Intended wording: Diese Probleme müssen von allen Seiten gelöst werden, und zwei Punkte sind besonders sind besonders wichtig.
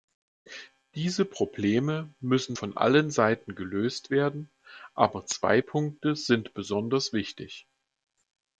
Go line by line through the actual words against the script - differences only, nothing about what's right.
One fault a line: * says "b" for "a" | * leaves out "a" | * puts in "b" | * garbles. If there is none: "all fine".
* says "aber" for "und"
* leaves out "sind besonders"